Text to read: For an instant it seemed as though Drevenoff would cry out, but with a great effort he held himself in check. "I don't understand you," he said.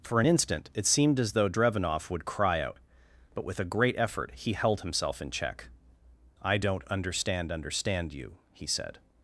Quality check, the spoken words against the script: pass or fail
fail